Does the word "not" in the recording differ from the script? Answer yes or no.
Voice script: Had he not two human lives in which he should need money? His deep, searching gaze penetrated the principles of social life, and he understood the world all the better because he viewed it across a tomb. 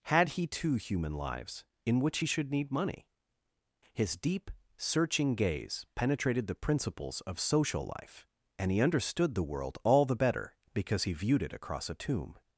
yes